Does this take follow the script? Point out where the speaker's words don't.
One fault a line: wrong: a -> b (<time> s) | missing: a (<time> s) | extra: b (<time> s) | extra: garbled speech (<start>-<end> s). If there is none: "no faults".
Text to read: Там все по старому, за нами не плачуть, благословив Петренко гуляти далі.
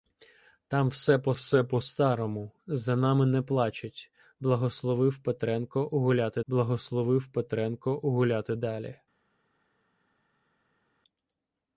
extra: все по (1.3 s)
extra: благословив Петренко гуляти (6.5 s)